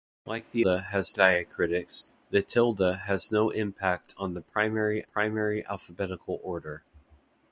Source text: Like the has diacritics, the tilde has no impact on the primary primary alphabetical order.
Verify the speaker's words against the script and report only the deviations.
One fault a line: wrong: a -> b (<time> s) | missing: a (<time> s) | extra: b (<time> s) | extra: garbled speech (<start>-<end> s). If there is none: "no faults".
no faults